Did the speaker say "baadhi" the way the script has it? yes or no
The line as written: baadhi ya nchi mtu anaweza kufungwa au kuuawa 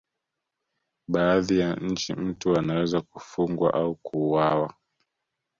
yes